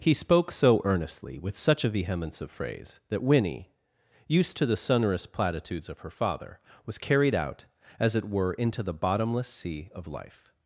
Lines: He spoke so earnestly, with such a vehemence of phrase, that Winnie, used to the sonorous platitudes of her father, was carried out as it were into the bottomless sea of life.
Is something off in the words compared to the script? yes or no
no